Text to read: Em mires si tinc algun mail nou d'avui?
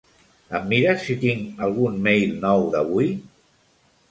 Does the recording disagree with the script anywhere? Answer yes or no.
no